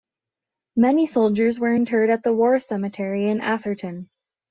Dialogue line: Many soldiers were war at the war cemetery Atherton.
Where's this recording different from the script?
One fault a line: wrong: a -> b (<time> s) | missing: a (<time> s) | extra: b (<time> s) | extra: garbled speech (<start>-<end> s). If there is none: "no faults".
wrong: war -> interred (1.7 s)
extra: in (3.3 s)